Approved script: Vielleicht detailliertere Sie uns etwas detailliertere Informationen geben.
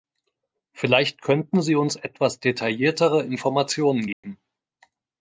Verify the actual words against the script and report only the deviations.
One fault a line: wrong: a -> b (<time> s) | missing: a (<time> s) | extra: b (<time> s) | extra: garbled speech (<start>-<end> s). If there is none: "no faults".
wrong: detailliertere -> könnten (1.2 s)